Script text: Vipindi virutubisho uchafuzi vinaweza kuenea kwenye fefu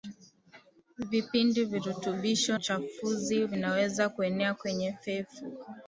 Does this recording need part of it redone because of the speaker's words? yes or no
no